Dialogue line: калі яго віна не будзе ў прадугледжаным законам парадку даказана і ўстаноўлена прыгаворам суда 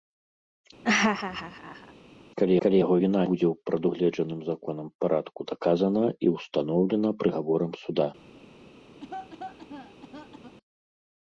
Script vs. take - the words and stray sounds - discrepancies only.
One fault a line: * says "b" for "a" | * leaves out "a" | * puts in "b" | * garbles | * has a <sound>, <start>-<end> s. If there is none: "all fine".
* has a laugh, 0.8-1.9 s
* puts in "калі"
* leaves out "не"
* has a cough, 9.0-10.6 s